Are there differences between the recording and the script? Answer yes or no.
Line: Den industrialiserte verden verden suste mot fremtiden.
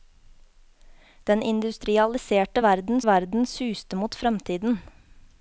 no